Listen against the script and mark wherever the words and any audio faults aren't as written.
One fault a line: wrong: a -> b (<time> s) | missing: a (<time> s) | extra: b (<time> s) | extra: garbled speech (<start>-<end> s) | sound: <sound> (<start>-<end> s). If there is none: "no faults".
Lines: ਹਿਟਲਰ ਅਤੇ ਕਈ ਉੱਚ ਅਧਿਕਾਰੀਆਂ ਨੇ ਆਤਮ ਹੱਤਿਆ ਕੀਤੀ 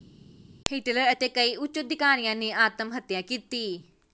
no faults